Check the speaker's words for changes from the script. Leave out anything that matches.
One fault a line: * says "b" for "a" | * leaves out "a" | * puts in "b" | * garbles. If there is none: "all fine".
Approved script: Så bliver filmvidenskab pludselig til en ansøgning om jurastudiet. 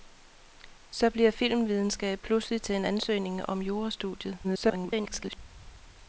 * garbles